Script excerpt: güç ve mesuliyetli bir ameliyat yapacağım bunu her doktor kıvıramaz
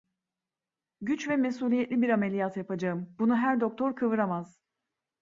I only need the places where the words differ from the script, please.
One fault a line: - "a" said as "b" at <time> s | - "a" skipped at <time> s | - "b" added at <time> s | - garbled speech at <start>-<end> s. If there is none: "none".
none